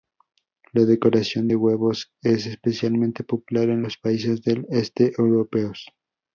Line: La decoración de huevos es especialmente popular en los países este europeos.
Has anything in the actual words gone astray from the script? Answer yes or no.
yes